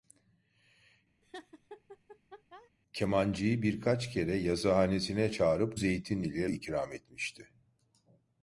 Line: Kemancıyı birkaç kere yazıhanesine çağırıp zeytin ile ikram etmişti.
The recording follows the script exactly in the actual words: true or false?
true